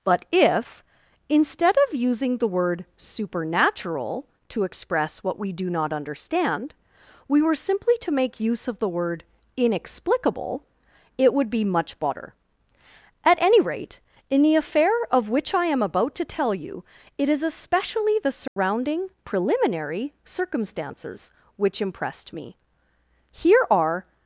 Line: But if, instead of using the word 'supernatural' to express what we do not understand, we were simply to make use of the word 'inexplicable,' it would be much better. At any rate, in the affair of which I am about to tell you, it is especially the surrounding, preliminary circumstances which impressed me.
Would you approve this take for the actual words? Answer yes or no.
no